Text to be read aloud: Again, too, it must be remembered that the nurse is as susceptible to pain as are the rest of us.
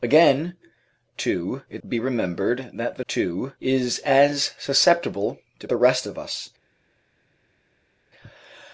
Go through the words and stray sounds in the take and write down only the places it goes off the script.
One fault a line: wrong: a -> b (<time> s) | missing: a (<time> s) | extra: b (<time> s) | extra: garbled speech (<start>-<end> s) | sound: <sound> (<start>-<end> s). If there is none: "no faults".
missing: must (1.8 s)
wrong: nurse -> too (3.1 s)
missing: pain as are (5.7 s)